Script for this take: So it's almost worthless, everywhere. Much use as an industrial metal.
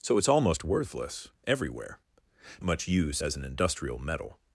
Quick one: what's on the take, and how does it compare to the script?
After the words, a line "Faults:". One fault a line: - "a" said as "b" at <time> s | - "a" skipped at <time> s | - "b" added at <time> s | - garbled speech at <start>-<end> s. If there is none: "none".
So it's almost worthless, everywhere. Much use as an industrial metal.
Faults:
none